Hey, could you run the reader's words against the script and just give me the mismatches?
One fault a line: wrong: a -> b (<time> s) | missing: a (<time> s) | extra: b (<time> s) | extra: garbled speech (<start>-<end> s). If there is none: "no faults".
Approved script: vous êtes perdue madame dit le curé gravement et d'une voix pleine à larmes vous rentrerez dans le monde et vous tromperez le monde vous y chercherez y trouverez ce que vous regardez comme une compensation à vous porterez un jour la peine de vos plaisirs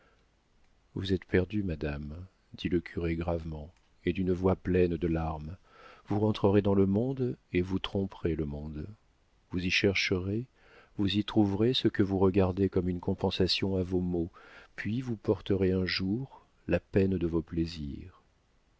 wrong: à -> de (5.0 s)
extra: vous (11.0 s)
extra: vos maux puis (13.8 s)